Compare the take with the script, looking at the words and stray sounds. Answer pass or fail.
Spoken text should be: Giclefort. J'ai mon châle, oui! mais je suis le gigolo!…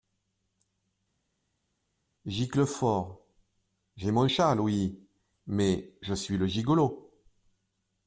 pass